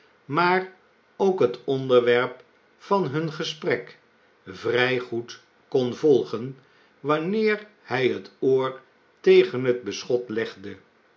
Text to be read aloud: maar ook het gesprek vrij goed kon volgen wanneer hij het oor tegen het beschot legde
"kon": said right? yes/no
yes